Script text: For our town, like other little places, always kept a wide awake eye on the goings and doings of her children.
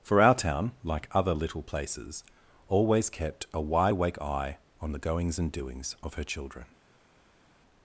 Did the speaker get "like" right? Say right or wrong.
right